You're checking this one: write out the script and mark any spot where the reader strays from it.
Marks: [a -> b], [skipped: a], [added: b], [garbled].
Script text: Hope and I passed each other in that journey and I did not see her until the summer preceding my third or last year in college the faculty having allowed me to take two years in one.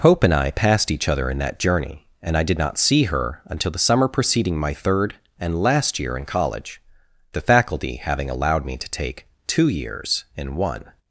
Hope and I passed each other in that journey and I did not see her until the summer preceding my third [or -> and] last year in college the faculty having allowed me to take two years in one.